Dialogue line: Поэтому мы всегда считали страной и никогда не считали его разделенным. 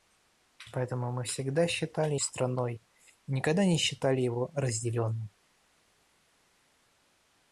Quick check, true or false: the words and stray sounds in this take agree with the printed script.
true